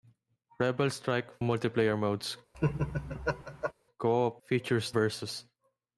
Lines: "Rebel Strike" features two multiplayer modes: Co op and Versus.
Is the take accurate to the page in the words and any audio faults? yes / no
no